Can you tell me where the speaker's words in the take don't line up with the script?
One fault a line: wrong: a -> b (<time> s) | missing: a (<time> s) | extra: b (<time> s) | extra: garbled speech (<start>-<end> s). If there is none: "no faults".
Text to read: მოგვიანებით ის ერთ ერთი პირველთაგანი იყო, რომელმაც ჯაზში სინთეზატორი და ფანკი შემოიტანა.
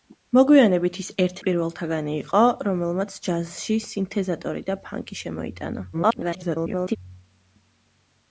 missing: ერთი (1.4 s)
extra: garbled speech (5.9-7.0 s)